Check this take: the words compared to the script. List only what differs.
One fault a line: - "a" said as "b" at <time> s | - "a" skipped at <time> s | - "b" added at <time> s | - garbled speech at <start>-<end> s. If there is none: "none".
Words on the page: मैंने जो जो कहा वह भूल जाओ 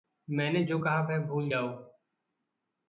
- "जो" skipped at 0.8 s